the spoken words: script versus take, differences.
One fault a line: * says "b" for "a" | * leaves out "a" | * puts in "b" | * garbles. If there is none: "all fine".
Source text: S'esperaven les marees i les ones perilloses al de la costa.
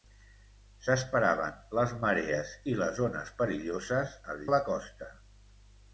all fine